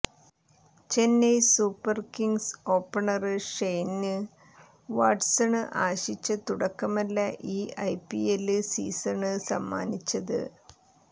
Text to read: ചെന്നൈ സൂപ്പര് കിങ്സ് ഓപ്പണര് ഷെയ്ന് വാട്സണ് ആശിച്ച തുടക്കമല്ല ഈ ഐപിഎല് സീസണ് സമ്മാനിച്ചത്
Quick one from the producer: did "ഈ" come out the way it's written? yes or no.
yes